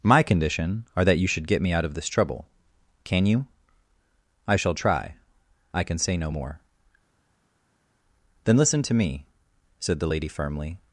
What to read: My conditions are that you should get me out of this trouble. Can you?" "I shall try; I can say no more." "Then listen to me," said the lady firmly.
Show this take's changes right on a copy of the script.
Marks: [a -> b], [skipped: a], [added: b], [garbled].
My [conditions -> condition] are that you should get me out of this trouble. Can you?" "I shall try; I can say no more." "Then listen to me," said the lady firmly.